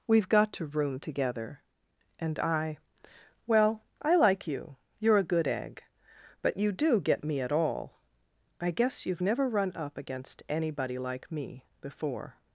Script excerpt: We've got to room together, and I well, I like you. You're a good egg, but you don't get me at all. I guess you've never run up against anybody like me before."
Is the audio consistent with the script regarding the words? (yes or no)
no